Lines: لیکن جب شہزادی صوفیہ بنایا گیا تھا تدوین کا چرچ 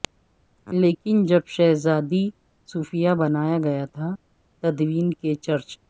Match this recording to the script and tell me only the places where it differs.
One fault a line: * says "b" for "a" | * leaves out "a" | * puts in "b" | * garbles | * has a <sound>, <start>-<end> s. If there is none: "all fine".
* says "کے" for "کا"